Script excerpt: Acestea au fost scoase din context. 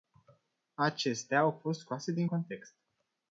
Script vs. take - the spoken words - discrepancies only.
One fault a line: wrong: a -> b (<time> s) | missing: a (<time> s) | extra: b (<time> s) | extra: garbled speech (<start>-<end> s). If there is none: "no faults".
no faults